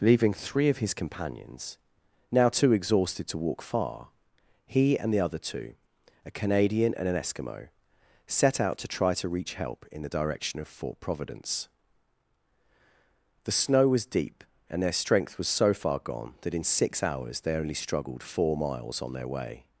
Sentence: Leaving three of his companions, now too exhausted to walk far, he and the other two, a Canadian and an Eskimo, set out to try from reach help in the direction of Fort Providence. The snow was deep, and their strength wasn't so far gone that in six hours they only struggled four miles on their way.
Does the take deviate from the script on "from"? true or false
true